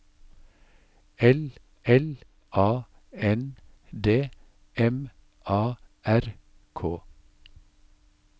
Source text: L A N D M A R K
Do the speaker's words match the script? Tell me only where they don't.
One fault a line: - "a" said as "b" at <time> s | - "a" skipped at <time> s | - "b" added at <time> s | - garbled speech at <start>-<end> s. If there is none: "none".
- "l" added at 1.8 s